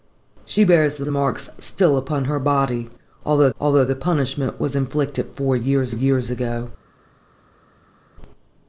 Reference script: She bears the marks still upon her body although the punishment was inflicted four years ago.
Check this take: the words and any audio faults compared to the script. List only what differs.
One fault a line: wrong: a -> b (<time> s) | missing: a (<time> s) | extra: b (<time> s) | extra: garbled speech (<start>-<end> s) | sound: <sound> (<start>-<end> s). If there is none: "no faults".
extra: the (1.0 s)
extra: although (3.6 s)
extra: years (5.9 s)